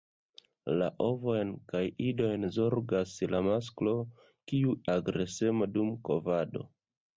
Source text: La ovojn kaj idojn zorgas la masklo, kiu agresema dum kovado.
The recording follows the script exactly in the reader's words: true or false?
true